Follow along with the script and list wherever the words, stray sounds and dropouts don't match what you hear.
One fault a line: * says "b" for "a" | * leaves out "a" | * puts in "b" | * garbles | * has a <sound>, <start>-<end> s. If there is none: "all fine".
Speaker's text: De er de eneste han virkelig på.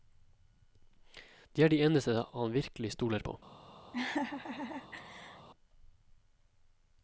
* puts in "stoler"
* has a laugh, 3.9-5.5 s